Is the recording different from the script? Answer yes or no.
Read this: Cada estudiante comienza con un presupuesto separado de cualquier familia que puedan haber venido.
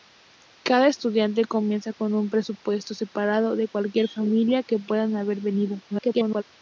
yes